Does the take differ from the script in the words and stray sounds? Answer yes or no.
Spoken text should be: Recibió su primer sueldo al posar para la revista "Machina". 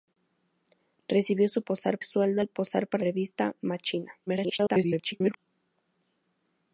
yes